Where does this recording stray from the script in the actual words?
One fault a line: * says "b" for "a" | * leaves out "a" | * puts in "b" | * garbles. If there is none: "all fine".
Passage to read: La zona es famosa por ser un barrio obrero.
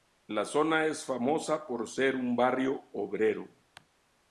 all fine